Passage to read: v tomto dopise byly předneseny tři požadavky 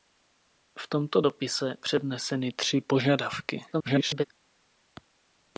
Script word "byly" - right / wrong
wrong